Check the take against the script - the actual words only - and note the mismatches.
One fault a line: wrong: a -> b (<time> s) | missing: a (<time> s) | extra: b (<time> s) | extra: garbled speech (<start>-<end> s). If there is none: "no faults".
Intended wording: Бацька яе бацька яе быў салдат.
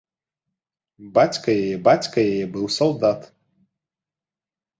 no faults